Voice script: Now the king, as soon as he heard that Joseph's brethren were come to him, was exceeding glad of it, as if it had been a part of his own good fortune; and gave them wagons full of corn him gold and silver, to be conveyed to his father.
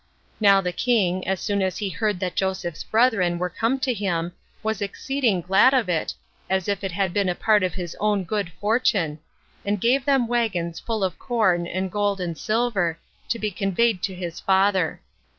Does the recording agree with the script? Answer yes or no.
no